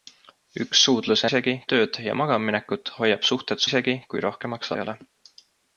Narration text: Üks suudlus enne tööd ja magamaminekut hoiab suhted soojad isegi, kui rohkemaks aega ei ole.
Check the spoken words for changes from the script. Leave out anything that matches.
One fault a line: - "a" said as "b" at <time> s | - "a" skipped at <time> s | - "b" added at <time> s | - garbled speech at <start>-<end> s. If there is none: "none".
- "enne" said as "isegi" at 1.3 s
- "soojad" skipped at 3.7 s
- "aega" skipped at 4.8 s